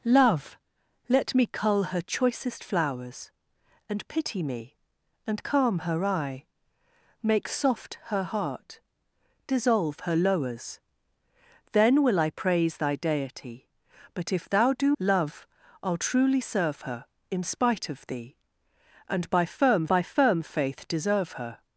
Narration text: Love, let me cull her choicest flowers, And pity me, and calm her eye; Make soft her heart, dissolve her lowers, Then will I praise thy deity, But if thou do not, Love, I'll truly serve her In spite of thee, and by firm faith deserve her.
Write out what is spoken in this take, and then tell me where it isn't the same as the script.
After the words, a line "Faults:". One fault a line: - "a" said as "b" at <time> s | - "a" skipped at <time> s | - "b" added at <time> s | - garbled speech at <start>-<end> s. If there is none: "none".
Love, let me cull her choicest flowers, And pity me, and calm her eye; Make soft her heart, dissolve her lowers, Then will I praise thy deity, But if thou do Love, I'll truly serve her In spite of thee, and by firm by firm faith deserve her.
Faults:
- "not" skipped at 14.9 s
- "by firm" added at 19.9 s